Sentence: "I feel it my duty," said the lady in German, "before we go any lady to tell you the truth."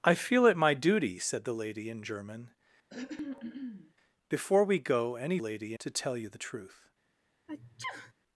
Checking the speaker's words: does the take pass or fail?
pass